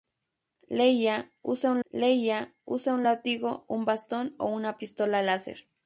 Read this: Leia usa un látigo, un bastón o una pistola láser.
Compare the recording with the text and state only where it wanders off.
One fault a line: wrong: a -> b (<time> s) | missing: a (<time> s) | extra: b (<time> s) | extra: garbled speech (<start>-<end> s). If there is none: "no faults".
extra: leia usa un (1.9 s)